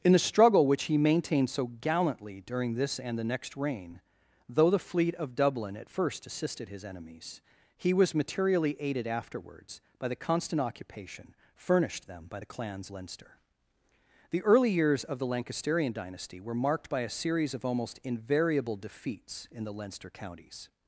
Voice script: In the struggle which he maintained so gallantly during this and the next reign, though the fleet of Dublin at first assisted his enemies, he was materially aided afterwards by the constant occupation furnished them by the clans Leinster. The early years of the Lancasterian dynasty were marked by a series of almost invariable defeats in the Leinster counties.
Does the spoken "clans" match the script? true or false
true